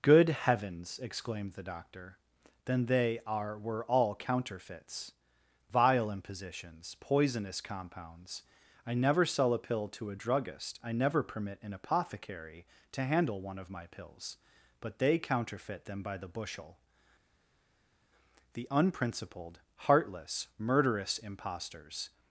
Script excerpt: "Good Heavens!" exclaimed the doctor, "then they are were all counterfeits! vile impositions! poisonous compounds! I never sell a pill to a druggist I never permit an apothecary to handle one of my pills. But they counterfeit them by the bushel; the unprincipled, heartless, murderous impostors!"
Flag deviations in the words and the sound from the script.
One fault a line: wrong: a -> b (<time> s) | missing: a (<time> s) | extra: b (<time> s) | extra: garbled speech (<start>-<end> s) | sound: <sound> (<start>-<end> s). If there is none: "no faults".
no faults